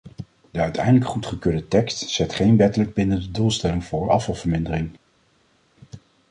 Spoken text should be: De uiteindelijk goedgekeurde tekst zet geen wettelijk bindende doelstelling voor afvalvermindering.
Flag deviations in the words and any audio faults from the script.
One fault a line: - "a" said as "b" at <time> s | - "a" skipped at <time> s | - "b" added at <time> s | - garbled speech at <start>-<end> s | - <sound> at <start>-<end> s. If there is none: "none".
none